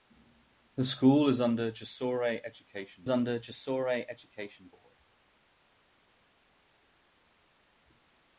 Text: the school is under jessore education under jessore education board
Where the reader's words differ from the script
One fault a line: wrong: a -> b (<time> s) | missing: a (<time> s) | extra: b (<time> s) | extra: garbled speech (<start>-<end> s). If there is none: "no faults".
no faults